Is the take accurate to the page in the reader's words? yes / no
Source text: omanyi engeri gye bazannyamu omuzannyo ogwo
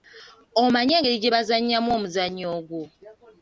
yes